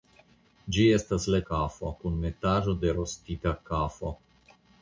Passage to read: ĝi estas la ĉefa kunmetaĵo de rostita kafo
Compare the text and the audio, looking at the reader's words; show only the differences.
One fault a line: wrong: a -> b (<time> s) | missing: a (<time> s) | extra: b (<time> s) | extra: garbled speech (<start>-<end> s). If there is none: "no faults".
wrong: ĉefa -> kafo (1.5 s)